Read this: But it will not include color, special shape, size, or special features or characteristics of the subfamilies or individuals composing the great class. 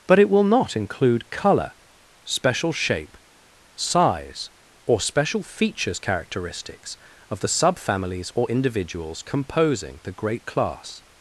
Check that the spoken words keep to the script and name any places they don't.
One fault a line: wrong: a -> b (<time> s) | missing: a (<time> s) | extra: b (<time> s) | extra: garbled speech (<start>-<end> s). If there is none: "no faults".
missing: or (6.0 s)